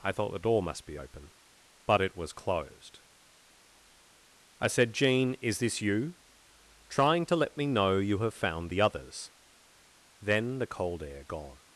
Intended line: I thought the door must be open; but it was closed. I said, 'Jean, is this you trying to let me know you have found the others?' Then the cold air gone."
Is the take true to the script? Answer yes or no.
yes